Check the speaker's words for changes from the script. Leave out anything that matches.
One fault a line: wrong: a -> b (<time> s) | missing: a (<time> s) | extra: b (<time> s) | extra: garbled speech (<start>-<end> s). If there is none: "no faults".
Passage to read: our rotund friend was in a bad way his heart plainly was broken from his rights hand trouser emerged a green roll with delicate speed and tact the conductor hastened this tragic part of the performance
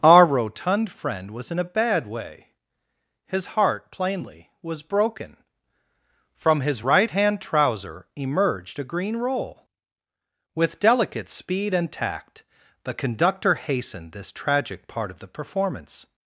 wrong: rights -> right (6.8 s)